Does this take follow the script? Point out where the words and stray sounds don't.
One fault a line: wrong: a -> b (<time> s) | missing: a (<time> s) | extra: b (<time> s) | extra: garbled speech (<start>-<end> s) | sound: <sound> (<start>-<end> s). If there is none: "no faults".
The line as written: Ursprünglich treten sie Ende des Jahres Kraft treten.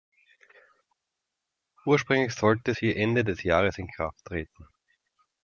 wrong: treten -> sollte (2.3 s)
extra: in (3.8 s)